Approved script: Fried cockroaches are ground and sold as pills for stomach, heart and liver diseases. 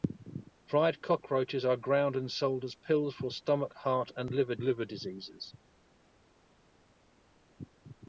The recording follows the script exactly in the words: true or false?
false